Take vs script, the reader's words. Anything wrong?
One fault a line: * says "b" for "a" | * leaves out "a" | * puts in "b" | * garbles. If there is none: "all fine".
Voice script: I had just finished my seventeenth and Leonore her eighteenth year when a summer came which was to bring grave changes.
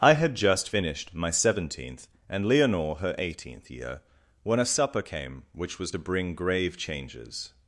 * says "supper" for "summer"